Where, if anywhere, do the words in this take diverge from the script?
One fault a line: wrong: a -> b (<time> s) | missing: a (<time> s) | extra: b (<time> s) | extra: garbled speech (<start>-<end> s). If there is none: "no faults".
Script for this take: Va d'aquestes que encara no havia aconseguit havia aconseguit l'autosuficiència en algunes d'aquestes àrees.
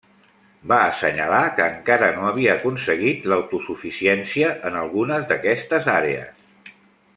wrong: d'aquestes -> assenyalar (0.8 s)
missing: havia aconseguit (3.3 s)